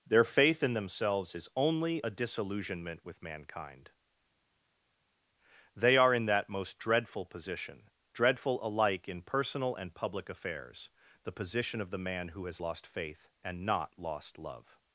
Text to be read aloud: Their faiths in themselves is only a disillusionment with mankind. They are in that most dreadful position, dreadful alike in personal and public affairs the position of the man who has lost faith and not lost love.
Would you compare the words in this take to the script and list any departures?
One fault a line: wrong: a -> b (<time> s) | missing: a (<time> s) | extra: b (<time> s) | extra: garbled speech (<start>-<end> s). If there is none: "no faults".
wrong: faiths -> faith (0.2 s)